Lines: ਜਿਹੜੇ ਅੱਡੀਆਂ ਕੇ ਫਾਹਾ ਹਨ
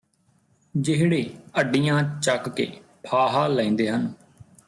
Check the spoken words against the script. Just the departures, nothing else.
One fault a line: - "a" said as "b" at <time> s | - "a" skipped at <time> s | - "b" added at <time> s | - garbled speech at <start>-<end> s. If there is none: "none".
- "ਚੱਕ" added at 2.2 s
- "ਲੈਂਦੇ" added at 3.5 s